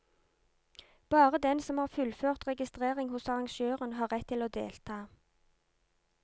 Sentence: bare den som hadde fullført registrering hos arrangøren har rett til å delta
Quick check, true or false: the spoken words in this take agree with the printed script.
false